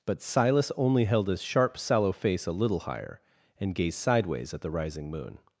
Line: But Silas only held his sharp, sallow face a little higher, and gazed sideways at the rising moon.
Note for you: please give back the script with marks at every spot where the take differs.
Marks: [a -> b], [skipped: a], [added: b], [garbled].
But Silas only held his sharp, sallow face a little higher, and gazed sideways at the rising moon.